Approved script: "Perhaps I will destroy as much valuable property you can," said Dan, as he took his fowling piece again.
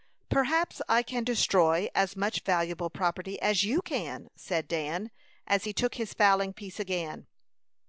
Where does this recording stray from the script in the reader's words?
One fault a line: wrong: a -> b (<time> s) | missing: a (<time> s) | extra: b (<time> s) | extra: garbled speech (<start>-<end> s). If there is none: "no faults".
wrong: will -> can (1.0 s)
extra: as (3.4 s)